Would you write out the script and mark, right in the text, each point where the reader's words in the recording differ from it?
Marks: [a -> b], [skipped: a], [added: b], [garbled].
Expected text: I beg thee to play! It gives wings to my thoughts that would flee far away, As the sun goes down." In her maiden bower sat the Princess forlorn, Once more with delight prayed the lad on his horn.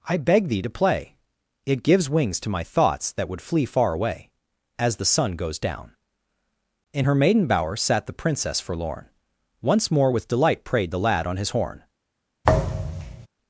I beg thee to play! It gives wings to my thoughts that would flee far away, As the sun goes down." In her maiden bower sat the Princess forlorn, Once more with delight prayed the lad on his horn.